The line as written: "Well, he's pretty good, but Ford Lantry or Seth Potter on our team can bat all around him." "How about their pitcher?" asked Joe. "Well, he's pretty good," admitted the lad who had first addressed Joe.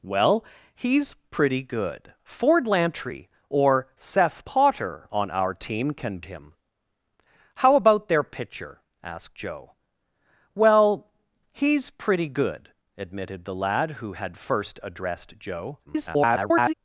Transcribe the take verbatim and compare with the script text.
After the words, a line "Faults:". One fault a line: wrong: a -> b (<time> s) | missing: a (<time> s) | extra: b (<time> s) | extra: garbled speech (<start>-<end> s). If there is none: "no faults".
"Well, he's pretty good, Ford Lantry or Seth Potter on our team can him." "How about their pitcher?" asked Joe. "Well, he's pretty good," admitted the lad who had first addressed Joe. [garbled]
Faults:
missing: but (2.1 s)
missing: bat all around (6.2 s)
extra: garbled speech (15.9-16.7 s)